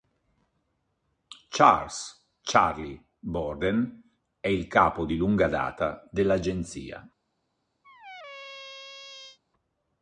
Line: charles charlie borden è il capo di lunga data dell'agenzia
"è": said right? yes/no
yes